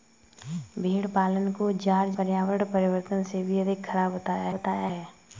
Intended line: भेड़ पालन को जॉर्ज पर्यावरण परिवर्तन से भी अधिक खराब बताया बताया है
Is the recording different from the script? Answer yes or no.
no